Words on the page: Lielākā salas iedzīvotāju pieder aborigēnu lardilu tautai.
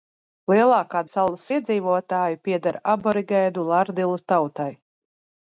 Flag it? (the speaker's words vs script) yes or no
no